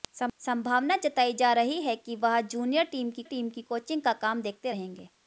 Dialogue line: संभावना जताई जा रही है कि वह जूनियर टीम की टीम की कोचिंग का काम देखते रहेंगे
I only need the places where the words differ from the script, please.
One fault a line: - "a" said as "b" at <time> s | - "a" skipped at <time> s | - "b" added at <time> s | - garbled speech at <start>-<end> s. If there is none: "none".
none